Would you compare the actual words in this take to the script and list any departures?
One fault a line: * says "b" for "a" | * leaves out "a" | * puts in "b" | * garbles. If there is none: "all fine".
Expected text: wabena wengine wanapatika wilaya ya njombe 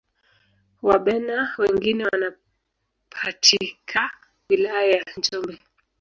all fine